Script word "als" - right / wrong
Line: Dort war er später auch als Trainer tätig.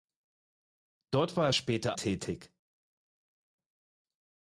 wrong